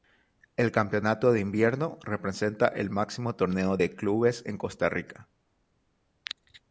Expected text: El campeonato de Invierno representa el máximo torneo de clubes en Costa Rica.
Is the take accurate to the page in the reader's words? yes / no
yes